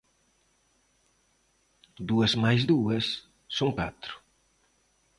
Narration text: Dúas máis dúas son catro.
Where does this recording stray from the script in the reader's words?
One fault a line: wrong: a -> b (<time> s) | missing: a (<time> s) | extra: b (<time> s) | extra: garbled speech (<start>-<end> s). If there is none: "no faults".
no faults